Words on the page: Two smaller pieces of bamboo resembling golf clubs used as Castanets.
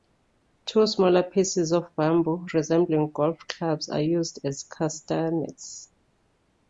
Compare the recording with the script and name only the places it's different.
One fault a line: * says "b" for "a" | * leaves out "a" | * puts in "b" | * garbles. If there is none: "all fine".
* puts in "are"